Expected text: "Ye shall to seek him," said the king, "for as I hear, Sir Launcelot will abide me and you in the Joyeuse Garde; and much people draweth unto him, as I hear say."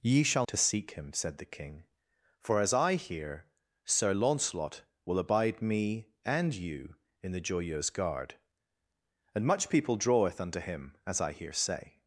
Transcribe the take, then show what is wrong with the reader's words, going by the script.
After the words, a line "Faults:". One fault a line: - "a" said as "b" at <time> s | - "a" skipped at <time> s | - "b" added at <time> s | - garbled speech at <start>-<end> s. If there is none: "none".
"Ye shall to seek him," said the king, "for as I hear, Sir Launcelot will abide me and you in the Joyeuse Garde; and much people draweth unto him, as I hear say."
Faults:
none